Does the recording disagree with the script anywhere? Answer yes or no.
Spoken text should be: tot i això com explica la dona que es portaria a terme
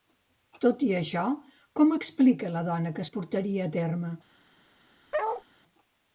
no